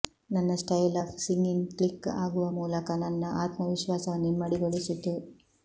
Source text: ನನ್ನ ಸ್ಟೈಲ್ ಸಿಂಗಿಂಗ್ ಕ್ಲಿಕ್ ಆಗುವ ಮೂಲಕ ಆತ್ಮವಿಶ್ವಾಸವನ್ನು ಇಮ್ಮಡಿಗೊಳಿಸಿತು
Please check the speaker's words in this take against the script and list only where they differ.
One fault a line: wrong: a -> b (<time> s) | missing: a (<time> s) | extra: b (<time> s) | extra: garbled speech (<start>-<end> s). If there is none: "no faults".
extra: ಆಫ್ (1.0 s)
extra: ನನ್ನ (3.0 s)